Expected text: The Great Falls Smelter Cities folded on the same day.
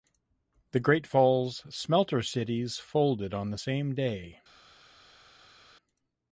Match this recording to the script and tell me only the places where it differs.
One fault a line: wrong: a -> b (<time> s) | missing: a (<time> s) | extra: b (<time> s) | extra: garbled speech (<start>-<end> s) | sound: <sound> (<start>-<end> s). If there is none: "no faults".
no faults